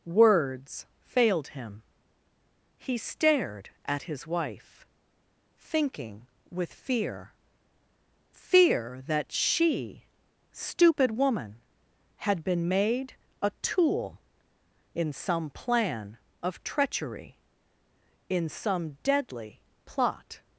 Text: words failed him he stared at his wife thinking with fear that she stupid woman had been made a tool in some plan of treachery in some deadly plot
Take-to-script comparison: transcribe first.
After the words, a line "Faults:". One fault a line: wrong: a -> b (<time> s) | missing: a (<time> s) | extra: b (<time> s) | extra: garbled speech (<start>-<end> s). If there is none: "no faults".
words failed him he stared at his wife thinking with fear fear that she stupid woman had been made a tool in some plan of treachery in some deadly plot
Faults:
extra: fear (8.3 s)